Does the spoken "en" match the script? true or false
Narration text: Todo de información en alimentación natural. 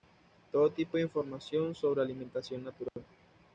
false